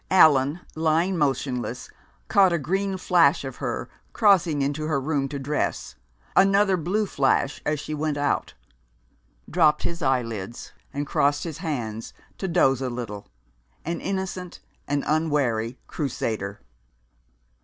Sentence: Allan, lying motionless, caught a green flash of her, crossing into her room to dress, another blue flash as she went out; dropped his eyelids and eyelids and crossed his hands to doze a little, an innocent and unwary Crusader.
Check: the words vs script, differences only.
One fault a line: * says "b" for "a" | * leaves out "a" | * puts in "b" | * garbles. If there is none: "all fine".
* leaves out "eyelids and"